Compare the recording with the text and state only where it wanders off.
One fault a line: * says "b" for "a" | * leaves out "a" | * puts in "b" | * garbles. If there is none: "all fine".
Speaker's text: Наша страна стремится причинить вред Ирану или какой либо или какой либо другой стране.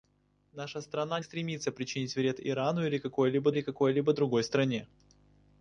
all fine